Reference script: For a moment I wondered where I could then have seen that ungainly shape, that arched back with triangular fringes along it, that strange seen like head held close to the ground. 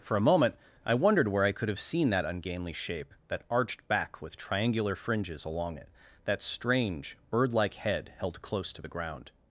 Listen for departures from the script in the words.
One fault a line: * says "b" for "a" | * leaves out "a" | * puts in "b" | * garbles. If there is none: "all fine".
* leaves out "then"
* says "bird" for "seen"